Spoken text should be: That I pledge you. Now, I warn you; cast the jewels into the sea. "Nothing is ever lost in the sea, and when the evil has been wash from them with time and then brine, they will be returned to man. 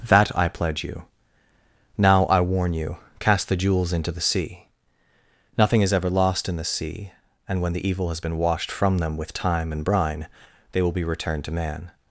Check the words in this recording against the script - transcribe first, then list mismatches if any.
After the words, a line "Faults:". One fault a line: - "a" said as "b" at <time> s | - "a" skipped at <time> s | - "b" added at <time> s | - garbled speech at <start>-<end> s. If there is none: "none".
That I pledge you. Now, I warn you; cast the jewels into the sea. "Nothing is ever lost in the sea, and when the evil has been washed from them with time and brine, they will be returned to man.
Faults:
- "wash" said as "washed" at 8.4 s
- "then" skipped at 9.8 s